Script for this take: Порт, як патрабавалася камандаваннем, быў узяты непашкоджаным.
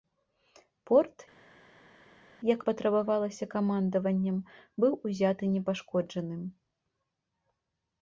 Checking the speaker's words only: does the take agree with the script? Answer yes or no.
yes